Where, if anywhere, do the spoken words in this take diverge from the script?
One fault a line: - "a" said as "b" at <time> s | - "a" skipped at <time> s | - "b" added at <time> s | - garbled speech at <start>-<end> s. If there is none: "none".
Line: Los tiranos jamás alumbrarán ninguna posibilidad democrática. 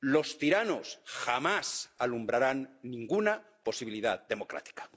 none